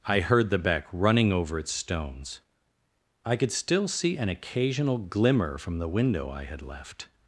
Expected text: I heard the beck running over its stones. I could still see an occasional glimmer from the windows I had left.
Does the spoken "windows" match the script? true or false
false